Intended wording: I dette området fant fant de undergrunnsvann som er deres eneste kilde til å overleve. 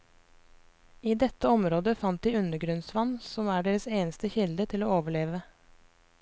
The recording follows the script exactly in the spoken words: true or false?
false